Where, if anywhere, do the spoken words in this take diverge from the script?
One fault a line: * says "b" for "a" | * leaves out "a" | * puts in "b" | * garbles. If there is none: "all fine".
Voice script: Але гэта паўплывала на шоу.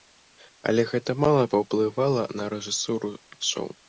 * puts in "мала"
* puts in "рэжысуру"